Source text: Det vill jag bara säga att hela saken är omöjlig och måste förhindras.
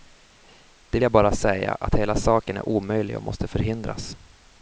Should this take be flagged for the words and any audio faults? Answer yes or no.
yes